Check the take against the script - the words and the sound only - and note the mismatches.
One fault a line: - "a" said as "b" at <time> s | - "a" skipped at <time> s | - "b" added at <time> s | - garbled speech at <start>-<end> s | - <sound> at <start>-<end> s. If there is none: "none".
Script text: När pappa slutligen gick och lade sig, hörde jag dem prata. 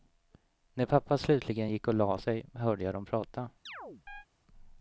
- chirp at 3.7-4.3 s